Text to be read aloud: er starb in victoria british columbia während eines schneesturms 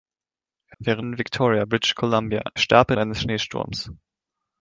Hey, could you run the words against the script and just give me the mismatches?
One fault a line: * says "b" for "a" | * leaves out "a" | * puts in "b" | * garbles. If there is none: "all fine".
* says "während" for "starb"
* says "starb" for "während"